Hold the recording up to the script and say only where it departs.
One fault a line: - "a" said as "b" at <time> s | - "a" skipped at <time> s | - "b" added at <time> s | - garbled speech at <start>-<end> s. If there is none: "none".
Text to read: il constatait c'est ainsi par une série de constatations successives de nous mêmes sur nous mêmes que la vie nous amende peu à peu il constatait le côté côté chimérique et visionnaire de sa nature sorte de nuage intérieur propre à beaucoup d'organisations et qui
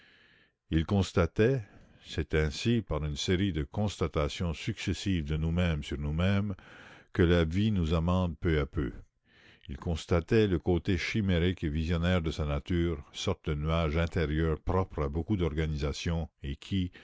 - "côté" skipped at 11.0 s